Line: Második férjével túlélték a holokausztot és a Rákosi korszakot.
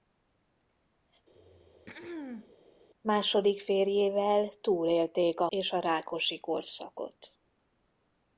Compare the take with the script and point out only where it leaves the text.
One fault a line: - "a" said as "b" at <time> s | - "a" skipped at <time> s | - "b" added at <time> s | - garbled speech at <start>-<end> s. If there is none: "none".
- "holokausztot" skipped at 5.5 s